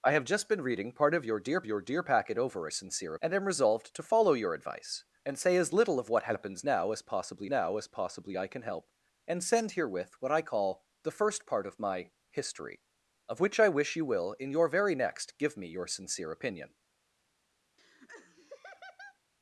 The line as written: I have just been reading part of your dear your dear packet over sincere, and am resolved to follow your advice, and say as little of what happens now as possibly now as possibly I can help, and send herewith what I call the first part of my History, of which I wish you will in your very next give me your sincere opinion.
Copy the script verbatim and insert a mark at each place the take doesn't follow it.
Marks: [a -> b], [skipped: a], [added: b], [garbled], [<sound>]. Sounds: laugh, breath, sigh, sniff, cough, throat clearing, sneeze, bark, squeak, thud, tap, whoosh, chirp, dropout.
I have just been reading part of your dear your dear packet over sincere, and am resolved to follow your advice, and say as little of what happens now as possibly now as possibly I can help, and send herewith what I call the first part of my History, of which I wish you will in your very next give me your sincere opinion. [laugh]